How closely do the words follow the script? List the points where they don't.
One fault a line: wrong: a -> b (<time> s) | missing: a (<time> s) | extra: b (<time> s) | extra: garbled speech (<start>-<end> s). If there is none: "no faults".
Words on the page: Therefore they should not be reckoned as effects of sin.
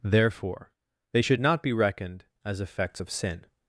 no faults